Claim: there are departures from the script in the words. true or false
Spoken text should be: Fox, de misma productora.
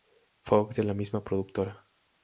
true